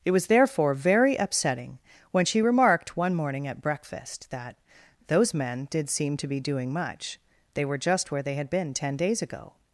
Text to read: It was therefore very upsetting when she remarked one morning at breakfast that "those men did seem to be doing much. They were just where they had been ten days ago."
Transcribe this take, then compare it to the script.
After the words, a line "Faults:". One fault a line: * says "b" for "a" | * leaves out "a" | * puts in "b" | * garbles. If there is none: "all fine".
It was therefore very upsetting when she remarked one morning at breakfast that "those men did seem to be doing much. They were just where they had been ten days ago."
Faults:
all fine